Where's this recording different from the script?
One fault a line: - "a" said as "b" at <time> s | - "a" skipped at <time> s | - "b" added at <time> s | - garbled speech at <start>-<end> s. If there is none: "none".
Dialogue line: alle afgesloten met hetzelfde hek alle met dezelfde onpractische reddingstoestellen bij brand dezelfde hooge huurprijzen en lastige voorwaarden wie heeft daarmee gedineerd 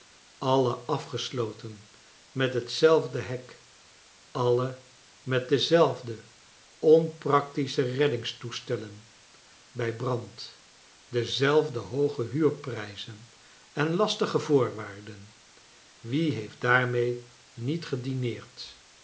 - "niet" added at 17.5 s